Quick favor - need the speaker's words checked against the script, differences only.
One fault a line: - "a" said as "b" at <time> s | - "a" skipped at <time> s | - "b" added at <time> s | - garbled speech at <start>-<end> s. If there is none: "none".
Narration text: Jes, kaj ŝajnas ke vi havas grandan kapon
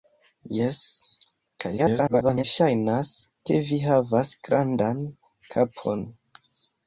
- garbled speech at 1.8-2.4 s